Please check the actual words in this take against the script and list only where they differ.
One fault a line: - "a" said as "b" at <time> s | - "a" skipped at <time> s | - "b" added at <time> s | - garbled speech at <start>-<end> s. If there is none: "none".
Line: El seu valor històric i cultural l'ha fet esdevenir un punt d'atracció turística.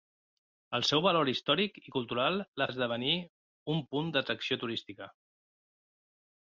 - "fet" skipped at 2.7 s